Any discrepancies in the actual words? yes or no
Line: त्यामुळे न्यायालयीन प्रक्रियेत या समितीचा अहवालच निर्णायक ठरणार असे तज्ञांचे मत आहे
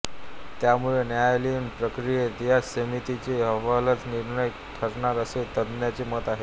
no